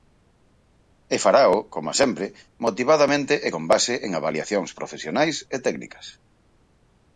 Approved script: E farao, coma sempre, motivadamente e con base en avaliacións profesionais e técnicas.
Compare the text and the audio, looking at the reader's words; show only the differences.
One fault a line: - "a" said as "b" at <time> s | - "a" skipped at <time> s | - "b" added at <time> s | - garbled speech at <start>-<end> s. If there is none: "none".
none